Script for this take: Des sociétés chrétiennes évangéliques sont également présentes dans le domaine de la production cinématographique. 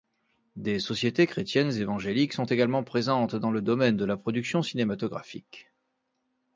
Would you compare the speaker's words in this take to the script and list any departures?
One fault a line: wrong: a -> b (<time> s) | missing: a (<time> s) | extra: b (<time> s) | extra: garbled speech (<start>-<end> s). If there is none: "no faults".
no faults